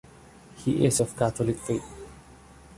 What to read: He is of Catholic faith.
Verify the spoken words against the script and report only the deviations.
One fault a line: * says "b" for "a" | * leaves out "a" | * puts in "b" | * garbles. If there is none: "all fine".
all fine